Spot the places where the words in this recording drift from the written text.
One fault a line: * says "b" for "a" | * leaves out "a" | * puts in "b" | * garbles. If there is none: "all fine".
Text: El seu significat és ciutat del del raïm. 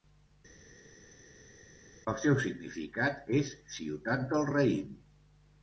* leaves out "del"